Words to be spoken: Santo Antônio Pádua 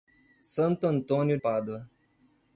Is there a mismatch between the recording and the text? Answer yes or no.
no